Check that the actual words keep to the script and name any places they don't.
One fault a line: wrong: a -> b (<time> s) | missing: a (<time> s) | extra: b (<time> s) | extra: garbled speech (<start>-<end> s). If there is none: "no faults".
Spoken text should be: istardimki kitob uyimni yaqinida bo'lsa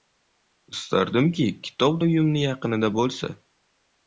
no faults